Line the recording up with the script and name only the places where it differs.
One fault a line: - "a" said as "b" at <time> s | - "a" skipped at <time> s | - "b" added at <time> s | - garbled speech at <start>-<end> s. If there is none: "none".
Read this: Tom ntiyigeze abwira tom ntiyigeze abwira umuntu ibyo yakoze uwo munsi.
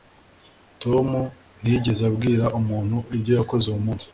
- "tom ntiyigeze abwira" skipped at 2.5 s